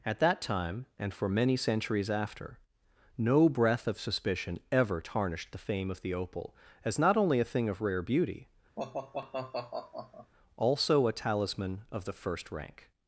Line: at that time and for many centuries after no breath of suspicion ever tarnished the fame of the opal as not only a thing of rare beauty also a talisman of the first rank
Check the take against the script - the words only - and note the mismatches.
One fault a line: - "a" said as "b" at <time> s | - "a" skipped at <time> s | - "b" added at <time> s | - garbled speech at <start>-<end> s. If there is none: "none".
none